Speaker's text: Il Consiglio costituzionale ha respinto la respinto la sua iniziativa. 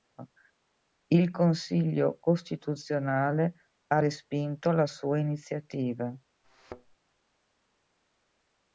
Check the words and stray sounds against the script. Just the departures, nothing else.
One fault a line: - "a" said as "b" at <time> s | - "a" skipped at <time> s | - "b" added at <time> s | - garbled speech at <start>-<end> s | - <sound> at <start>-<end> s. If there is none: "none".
- "respinto la" skipped at 4.9 s
- thud at 6.4-7.0 s